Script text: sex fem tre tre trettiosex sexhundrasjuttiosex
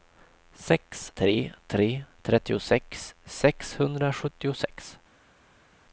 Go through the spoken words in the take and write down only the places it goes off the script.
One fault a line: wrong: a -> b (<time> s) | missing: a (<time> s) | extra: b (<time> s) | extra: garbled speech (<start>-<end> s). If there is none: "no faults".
missing: fem (1.1 s)